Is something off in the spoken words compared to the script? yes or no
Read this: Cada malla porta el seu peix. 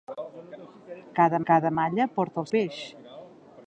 yes